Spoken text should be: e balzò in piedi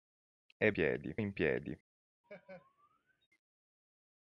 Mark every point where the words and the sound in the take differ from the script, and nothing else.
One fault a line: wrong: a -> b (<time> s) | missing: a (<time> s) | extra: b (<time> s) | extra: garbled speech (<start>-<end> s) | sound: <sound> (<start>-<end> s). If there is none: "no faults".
wrong: balzò -> piedi (0.7 s)
sound: laugh (2.2-3.3 s)